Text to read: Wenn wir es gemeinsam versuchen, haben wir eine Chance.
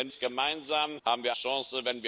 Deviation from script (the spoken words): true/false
true